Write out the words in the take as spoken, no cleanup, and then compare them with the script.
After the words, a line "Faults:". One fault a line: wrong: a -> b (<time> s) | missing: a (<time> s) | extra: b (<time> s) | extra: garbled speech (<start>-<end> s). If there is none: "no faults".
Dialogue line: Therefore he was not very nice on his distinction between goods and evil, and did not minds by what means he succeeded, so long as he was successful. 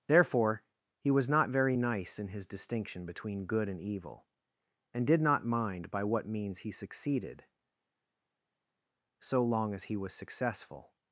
Therefore he was not very nice in his distinction between good and evil, and did not mind by what means he succeeded, so long as he was successful.
Faults:
wrong: on -> in (2.2 s)
wrong: goods -> good (3.4 s)
wrong: minds -> mind (5.4 s)